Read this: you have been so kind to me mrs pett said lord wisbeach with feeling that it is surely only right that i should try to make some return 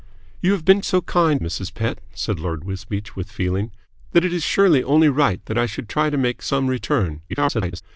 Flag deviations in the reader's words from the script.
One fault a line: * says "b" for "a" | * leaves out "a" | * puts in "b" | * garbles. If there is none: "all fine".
* leaves out "to me"
* garbles